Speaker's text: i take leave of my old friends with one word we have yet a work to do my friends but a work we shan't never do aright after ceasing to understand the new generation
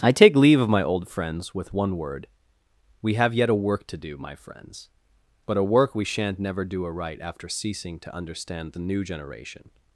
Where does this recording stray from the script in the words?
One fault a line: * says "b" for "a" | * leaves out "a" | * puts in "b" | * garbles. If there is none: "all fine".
all fine